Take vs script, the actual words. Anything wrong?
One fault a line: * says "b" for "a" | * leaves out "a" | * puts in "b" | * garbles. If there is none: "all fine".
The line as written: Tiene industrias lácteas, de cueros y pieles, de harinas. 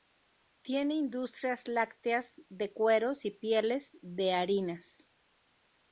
all fine